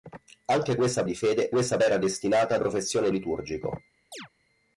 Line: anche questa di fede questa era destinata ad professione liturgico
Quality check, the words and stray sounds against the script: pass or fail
fail